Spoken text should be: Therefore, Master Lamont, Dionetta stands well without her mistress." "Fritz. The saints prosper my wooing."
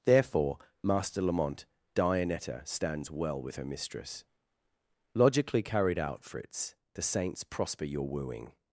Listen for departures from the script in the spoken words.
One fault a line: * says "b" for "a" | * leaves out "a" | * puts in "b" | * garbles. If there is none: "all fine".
* says "with" for "without"
* puts in "Logically carried out"
* says "your" for "my"